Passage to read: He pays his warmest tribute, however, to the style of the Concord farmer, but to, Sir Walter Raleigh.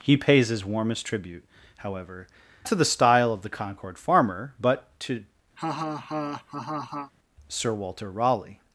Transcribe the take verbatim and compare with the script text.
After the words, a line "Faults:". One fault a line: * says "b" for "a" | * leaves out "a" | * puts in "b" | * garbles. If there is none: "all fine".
He pays his warmest tribute, however, to the style of the Concord farmer, but to, Sir Walter Raleigh.
Faults:
all fine